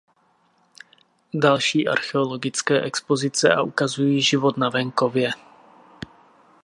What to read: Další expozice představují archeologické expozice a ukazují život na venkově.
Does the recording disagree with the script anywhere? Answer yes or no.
yes